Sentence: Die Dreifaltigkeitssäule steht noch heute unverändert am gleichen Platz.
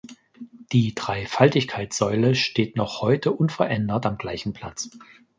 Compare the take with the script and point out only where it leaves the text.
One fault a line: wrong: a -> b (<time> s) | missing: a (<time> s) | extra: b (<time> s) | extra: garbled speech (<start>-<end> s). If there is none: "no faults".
no faults